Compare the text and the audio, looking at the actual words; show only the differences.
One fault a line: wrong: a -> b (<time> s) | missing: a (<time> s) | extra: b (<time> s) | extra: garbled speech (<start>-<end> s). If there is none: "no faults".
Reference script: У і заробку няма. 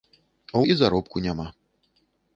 no faults